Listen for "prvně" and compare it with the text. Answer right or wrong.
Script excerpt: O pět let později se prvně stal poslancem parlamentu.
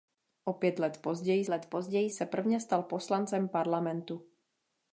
right